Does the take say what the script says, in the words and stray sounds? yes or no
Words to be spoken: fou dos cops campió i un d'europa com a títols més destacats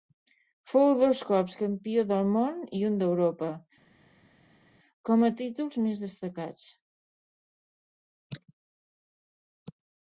no